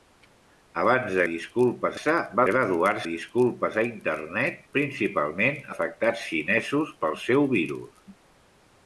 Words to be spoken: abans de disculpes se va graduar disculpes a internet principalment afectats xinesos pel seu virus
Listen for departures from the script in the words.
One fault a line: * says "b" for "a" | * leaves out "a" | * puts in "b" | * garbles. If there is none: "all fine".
all fine